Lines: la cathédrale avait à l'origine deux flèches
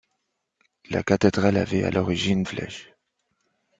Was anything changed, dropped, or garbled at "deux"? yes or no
yes